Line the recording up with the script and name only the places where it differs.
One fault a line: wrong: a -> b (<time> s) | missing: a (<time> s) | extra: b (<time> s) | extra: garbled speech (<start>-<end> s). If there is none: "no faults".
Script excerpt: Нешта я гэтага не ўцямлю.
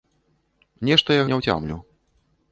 missing: гэтага (1.3 s)